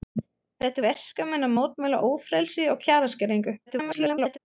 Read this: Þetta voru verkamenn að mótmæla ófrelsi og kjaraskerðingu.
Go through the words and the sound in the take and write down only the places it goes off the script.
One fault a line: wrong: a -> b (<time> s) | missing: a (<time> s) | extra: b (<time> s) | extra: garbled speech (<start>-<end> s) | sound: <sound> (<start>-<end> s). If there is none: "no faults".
missing: voru (0.8 s)
extra: garbled speech (3.7-4.4 s)